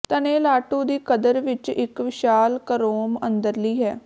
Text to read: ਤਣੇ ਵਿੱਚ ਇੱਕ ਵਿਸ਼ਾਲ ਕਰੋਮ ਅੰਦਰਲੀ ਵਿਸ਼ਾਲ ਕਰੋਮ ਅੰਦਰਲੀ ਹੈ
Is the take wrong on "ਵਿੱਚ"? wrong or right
wrong